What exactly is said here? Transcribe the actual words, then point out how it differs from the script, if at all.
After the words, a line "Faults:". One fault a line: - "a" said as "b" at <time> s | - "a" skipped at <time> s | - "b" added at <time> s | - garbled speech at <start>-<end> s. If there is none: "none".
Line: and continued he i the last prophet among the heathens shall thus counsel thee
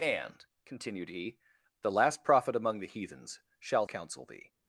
and continued he the last prophet among the heathens shall counsel thee
Faults:
- "i" skipped at 1.4 s
- "thus" skipped at 3.8 s